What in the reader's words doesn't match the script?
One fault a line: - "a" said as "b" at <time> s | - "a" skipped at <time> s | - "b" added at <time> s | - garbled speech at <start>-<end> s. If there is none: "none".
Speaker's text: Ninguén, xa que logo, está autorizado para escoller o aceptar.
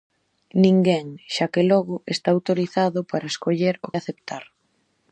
none